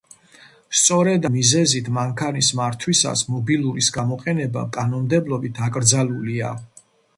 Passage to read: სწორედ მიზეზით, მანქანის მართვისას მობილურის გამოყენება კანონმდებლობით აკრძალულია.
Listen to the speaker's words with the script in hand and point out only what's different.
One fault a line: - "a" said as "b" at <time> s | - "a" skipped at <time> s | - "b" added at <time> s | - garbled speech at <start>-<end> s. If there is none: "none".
none